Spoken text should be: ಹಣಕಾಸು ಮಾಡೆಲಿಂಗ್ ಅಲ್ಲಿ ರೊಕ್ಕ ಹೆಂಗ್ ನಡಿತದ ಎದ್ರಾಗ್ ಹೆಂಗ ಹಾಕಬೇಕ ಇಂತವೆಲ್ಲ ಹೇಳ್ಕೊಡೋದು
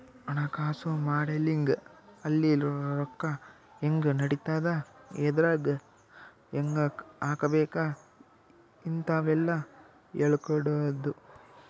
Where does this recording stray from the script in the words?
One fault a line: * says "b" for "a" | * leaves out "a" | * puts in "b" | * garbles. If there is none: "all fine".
all fine